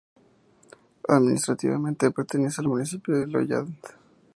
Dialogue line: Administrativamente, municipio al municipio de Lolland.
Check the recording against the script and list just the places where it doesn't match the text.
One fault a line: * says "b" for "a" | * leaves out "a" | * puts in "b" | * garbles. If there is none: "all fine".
* says "pertenece" for "municipio"